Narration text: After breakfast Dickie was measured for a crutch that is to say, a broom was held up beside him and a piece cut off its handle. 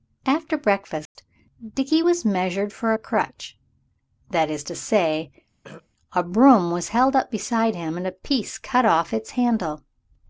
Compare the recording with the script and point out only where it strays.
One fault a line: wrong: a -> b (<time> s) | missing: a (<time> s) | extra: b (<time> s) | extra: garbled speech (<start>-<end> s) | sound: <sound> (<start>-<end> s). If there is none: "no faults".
sound: dropout (1.1-1.2 s)
sound: throat clearing (5.6-5.9 s)